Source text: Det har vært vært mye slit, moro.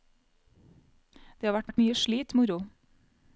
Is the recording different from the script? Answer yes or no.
no